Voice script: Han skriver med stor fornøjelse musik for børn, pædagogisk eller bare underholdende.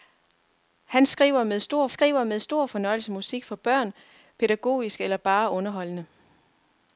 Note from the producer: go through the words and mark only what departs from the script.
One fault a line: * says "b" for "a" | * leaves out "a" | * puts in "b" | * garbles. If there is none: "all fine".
* puts in "skriver med stor"